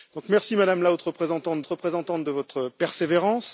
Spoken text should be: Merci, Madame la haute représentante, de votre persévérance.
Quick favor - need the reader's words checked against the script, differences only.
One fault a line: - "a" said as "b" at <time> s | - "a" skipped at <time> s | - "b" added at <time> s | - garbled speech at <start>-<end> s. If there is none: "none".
- "représentante" added at 1.7 s